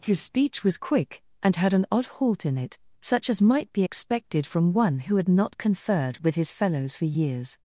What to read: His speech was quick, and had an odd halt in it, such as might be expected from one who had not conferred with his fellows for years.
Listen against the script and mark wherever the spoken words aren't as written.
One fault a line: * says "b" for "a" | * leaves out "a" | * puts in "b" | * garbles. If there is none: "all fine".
all fine